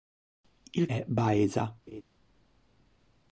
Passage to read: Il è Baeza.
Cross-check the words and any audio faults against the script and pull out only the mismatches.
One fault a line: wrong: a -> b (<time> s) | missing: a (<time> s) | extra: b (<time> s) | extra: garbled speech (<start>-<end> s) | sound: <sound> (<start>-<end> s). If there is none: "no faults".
sound: laugh (1.9-2.0 s)